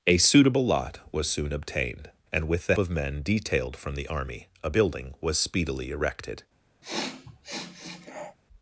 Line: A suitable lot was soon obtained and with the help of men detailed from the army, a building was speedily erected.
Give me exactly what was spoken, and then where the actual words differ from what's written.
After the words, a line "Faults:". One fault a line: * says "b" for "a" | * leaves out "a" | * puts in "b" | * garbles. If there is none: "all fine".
A suitable lot was soon obtained and with the of men detailed from the army, a building was speedily erected.
Faults:
* leaves out "help"